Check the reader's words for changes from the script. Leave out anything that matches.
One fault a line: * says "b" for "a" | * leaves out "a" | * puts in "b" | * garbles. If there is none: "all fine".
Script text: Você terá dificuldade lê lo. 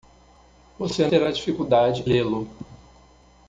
all fine